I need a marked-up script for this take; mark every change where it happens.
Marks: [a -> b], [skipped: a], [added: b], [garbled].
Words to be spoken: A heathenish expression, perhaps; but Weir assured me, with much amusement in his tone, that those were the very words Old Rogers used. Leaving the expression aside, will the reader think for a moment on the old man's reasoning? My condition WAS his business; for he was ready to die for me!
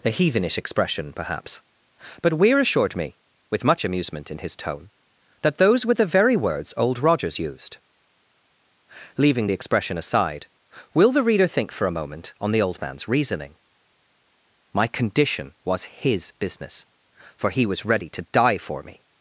A heathenish expression, perhaps; but Weir assured me, with much amusement in his tone, that those were the very words Old Rogers used. Leaving the expression aside, will the reader think for a moment on the old man's reasoning? My condition WAS his business; for he was ready to die for me!